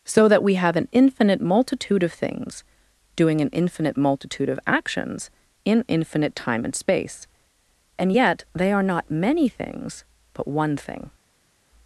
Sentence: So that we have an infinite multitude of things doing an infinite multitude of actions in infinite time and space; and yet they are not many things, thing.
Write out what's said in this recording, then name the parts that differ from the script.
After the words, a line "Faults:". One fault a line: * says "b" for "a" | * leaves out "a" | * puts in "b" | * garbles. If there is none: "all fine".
So that we have an infinite multitude of things doing an infinite multitude of actions in infinite time and space; and yet they are not many things, but one thing.
Faults:
* puts in "but one"